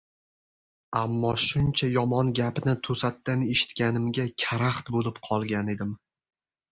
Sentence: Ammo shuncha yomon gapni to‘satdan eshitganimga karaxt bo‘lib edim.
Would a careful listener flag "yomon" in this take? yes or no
no